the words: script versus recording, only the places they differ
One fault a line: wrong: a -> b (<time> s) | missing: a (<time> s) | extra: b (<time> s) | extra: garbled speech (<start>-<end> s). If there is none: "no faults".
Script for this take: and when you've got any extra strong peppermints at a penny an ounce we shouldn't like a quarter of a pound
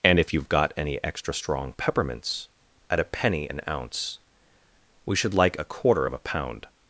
wrong: when -> if (0.2 s)
wrong: shouldn't -> should (5.1 s)